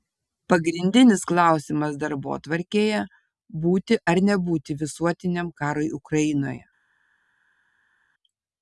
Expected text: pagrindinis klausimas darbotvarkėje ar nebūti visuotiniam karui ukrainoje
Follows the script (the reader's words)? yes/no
no